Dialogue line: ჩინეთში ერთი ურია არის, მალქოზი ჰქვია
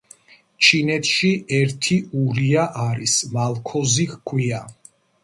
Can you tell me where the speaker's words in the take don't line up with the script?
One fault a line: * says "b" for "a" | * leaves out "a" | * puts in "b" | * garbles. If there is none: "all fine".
all fine